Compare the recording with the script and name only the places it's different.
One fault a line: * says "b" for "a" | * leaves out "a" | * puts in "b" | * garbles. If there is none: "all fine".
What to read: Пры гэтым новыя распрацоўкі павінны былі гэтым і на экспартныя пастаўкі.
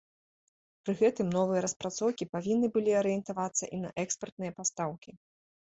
* says "арыентавацца" for "гэтым"